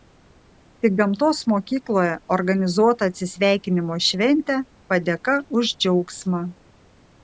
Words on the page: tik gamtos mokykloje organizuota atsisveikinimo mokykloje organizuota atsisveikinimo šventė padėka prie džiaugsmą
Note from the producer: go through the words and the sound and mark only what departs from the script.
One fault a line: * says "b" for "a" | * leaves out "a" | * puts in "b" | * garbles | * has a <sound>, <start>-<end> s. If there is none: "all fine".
* leaves out "mokykloje organizuota atsisveikinimo"
* says "už" for "prie"